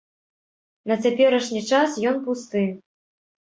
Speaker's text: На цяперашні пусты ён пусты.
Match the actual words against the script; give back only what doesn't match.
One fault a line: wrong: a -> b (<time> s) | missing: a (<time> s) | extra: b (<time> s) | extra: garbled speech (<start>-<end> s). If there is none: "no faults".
wrong: пусты -> час (1.8 s)